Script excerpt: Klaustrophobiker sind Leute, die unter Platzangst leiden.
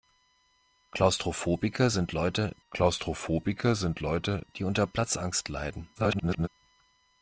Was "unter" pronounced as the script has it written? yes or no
yes